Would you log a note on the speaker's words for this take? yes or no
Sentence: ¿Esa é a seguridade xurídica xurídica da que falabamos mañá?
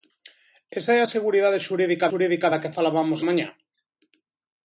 no